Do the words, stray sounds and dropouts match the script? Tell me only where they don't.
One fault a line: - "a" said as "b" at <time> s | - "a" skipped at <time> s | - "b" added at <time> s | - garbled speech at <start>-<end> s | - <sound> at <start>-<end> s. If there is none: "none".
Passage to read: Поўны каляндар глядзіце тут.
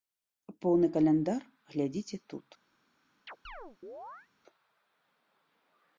- chirp at 3.3-4.3 s